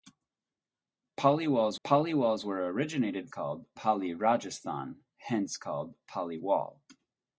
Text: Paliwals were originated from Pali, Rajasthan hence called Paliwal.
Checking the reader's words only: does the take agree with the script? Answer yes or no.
no